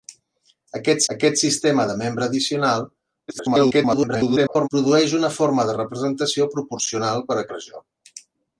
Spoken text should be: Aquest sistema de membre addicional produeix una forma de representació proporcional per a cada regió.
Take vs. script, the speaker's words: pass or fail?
fail